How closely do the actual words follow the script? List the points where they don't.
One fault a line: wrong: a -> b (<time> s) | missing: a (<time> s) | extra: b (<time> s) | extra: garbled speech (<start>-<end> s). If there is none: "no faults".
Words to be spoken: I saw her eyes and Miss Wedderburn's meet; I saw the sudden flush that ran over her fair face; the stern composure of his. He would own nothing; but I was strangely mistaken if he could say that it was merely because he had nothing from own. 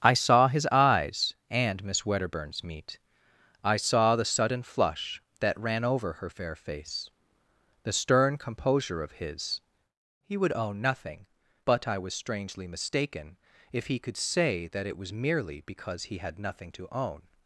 wrong: her -> his (0.5 s)
wrong: from -> to (16.7 s)